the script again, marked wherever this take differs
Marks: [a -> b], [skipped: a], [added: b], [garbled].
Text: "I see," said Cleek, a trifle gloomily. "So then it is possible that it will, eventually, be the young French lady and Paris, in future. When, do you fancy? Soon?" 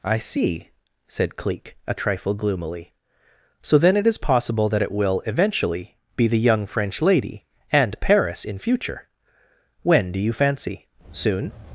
"I see," said Cleek, a trifle gloomily. "So then it is possible that it will, eventually, be the young French lady and Paris, in future. When, do you fancy? Soon?"